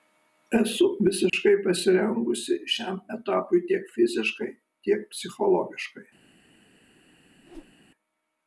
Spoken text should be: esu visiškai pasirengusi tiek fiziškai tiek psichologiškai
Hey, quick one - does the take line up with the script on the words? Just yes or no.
no